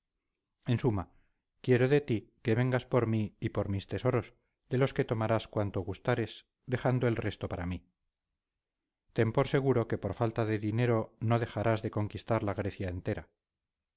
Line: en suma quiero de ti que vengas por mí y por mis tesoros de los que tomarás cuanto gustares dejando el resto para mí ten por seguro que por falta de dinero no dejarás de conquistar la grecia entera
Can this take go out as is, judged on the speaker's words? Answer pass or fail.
pass